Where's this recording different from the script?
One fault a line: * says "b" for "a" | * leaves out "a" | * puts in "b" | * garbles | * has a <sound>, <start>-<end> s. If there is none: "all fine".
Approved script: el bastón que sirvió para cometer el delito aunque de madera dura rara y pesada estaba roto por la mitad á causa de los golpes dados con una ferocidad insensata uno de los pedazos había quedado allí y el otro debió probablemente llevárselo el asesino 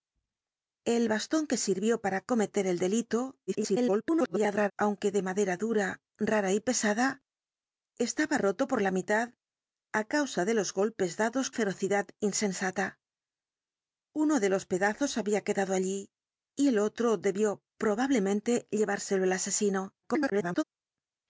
* garbles
* leaves out "con una"
* garbles